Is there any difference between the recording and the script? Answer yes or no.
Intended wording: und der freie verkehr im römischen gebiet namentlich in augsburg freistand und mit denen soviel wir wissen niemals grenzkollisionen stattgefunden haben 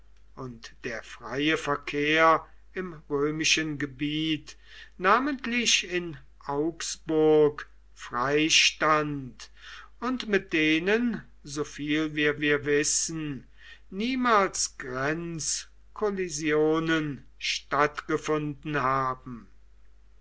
yes